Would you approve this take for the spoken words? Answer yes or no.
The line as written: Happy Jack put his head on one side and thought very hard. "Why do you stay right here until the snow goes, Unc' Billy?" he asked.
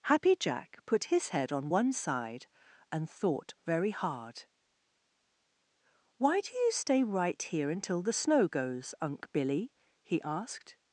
yes